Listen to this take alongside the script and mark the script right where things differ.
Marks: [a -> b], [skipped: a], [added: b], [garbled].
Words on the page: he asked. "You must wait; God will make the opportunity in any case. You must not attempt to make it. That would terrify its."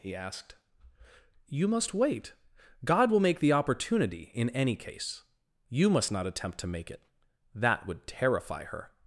he asked. "You must wait; God will make the opportunity in any case. You must not attempt to make it. That would terrify [its." -> her]